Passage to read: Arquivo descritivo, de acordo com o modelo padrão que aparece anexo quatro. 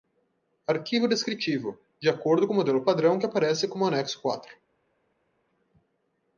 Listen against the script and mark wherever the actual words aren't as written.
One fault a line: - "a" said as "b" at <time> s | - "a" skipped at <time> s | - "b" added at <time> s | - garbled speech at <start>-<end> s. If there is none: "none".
- "como" added at 3.7 s